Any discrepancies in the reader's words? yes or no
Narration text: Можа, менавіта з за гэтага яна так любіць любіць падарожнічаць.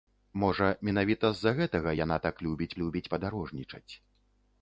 no